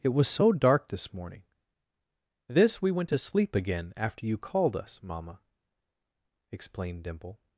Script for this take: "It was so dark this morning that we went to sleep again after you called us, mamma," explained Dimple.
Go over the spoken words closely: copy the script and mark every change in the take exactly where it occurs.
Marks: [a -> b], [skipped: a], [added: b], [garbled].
"It was so dark this morning [that -> this] we went to sleep again after you called us, mamma," explained Dimple.